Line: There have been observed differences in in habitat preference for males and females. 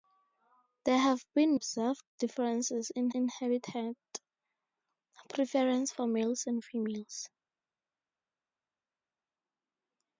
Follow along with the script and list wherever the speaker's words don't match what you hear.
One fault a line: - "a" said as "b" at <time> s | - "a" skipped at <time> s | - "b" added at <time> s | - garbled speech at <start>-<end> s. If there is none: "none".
none